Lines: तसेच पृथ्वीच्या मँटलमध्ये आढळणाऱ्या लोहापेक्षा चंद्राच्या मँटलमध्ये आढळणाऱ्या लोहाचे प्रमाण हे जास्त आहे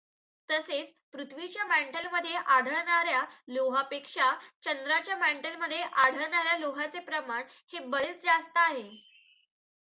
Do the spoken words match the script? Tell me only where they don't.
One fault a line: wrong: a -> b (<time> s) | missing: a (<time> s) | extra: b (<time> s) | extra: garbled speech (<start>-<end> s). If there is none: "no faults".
extra: बरेच (7.9 s)